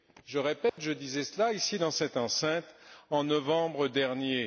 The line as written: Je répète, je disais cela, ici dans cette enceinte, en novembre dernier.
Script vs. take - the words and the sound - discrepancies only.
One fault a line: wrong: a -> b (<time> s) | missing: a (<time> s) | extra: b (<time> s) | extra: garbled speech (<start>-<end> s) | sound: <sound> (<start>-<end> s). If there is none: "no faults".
sound: dropout (0.7-0.8 s)